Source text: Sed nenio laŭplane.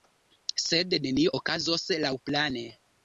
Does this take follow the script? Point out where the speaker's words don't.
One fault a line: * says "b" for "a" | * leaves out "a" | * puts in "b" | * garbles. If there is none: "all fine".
* puts in "okazos"